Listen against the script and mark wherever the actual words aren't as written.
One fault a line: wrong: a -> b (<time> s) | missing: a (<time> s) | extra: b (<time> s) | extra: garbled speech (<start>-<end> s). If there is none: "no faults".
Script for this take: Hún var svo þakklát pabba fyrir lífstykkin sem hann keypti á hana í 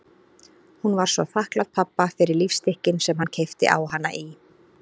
no faults